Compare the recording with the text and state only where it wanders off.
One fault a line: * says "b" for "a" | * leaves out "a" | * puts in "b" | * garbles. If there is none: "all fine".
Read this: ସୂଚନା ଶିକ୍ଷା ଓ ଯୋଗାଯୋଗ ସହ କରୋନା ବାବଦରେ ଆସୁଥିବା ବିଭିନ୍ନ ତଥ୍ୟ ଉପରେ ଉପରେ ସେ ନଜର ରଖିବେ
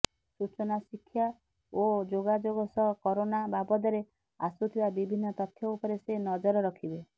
* leaves out "ଉପରେ"